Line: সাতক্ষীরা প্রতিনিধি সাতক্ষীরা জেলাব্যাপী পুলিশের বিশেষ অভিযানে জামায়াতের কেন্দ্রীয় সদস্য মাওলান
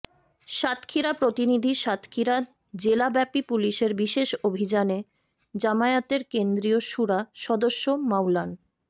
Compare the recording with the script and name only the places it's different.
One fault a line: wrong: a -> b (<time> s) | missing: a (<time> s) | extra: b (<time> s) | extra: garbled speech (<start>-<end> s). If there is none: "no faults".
extra: শুরা (6.9 s)